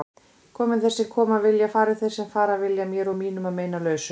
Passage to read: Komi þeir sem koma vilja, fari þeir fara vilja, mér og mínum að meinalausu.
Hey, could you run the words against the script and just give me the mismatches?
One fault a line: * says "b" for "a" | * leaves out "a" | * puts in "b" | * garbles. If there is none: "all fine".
* puts in "sem"